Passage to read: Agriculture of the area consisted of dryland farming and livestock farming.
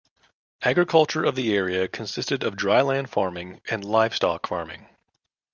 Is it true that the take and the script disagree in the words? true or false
false